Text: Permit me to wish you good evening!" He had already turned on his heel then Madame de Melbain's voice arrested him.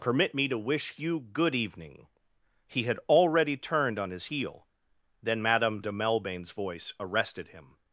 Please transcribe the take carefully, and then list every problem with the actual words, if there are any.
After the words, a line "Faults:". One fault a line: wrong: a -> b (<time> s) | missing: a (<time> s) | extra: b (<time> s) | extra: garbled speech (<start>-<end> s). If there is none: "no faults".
Permit me to wish you good evening!" He had already turned on his heel then Madame de Melbain's voice arrested him.
Faults:
no faults